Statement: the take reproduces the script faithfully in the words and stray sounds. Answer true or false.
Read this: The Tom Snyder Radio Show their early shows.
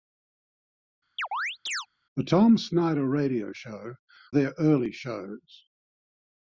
false